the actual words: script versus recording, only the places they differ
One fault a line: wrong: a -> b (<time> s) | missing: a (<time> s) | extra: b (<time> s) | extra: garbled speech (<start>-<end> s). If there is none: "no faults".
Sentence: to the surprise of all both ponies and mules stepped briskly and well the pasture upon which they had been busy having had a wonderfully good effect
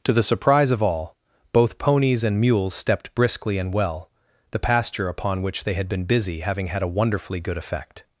no faults